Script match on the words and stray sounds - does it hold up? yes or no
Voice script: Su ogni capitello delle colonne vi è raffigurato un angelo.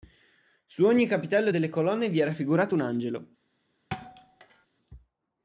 no